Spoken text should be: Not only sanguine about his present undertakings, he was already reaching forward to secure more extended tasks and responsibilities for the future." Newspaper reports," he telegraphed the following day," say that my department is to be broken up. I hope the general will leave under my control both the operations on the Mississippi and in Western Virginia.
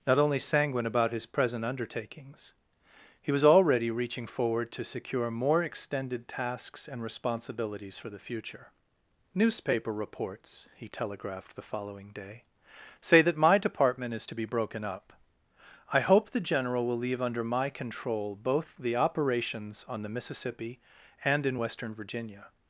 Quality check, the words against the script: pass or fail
pass